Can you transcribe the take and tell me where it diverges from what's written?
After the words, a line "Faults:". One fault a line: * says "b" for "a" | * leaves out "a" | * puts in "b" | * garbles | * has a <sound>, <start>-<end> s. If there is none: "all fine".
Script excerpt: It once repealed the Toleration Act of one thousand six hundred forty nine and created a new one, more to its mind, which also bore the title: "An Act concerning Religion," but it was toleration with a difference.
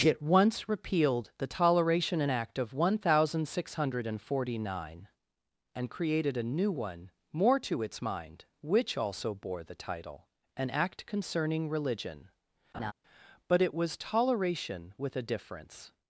It once repealed the Toleration Act of one thousand six hundred forty nine and created a new one, more to its mind, which also bore the title: "An Act concerning Religion," but it was toleration with a difference.
Faults:
* has a laugh, 12.7-12.9 s